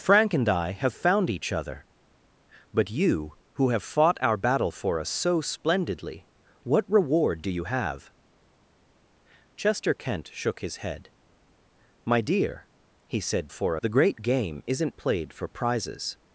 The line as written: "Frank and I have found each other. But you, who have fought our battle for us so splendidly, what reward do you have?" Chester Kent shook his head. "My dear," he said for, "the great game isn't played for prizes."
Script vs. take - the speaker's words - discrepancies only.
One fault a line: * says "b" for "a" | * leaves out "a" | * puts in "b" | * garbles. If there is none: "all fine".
all fine